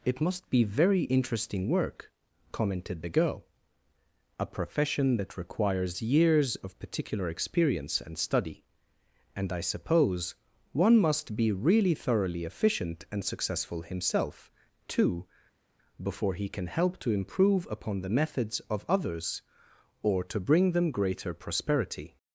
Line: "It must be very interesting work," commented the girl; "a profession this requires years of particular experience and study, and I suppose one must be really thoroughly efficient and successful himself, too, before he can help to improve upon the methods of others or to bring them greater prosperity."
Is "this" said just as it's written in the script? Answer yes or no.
no